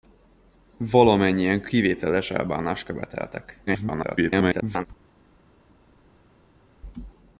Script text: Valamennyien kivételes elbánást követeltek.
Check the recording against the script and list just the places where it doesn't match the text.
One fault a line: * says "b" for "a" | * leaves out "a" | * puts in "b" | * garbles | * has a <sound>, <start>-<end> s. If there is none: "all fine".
* garbles